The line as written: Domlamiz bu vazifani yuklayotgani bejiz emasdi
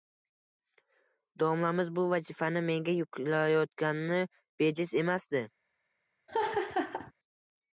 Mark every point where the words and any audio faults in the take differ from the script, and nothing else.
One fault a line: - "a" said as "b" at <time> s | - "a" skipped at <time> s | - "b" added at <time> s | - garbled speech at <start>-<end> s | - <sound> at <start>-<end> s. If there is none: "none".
- "menga" added at 2.7 s
- laugh at 6.3-7.1 s